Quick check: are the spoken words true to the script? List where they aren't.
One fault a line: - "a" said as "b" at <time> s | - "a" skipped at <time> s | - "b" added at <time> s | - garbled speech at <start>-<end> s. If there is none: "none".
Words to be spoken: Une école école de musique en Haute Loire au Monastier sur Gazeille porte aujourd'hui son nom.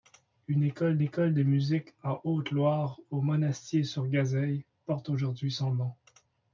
none